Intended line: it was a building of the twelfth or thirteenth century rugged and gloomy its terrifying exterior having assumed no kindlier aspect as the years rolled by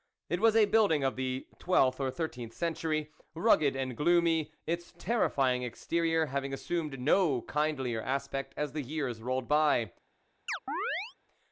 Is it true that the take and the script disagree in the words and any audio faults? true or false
true